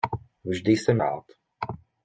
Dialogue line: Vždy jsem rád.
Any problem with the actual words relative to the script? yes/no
no